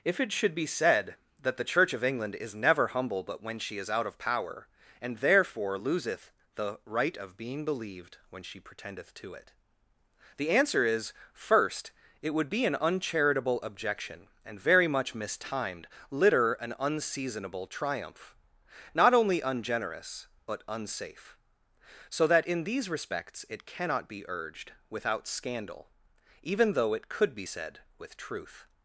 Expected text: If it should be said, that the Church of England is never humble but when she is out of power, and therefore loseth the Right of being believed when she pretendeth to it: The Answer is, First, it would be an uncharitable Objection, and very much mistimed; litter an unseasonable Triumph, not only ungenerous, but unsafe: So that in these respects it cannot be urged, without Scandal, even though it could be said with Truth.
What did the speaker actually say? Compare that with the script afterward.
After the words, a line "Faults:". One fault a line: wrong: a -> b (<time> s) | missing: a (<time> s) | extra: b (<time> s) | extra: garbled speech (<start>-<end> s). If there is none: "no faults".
If it should be said, that the Church of England is never humble but when she is out of power, and therefore loseth the Right of being believed when she pretendeth to it: The Answer is, First, it would be an uncharitable Objection, and very much mistimed; litter an unseasonable Triumph, not only ungenerous, but unsafe: So that in these respects it cannot be urged, without Scandal, even though it could be said with Truth.
Faults:
no faults